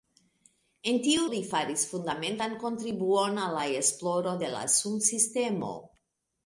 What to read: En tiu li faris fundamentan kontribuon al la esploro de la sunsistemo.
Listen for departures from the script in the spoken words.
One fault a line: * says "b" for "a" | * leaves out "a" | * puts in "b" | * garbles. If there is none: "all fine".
all fine